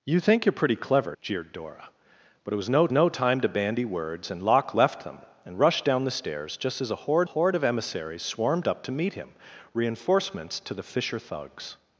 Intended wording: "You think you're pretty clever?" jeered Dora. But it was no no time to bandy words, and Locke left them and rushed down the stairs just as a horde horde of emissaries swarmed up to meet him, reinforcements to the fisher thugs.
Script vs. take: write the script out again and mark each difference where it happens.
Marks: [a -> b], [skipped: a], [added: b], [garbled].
"You think you're pretty clever?" jeered Dora. But it was no no time to bandy words, and Locke left them and rushed down the stairs just as a horde horde of emissaries swarmed up to meet him, reinforcements to the fisher thugs.